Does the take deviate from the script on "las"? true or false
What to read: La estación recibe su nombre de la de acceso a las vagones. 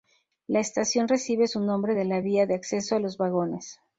true